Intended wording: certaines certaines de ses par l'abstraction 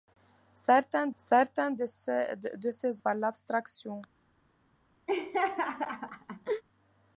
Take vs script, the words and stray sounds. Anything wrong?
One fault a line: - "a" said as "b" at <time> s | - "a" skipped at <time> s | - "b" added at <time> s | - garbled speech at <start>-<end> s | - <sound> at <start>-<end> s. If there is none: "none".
- laugh at 5.1-6.6 s